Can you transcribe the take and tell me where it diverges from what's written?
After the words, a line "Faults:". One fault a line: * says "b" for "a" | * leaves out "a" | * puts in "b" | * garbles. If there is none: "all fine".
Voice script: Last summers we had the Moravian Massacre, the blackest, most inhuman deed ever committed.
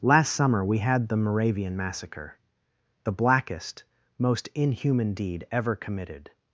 Last summer we had the Moravian Massacre, the blackest, most inhuman deed ever committed.
Faults:
* says "summer" for "summers"